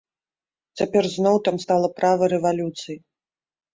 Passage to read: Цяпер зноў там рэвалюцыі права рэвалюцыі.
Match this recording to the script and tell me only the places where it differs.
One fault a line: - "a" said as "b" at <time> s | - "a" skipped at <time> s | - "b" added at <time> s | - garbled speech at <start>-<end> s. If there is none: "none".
- "рэвалюцыі" said as "стала" at 1.6 s